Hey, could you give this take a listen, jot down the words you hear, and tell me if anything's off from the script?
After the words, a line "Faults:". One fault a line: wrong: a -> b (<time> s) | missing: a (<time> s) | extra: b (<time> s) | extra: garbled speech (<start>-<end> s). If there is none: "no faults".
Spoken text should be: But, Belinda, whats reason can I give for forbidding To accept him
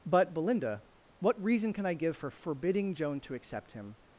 But, Belinda, what reason can I give for forbidding Joan to accept him
Faults:
wrong: whats -> what (1.2 s)
extra: Joan (2.9 s)